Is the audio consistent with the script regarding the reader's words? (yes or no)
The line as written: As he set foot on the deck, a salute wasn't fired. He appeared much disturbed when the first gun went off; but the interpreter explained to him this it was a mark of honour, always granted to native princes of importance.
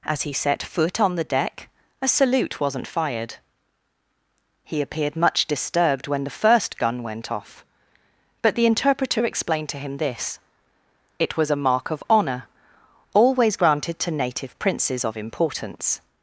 yes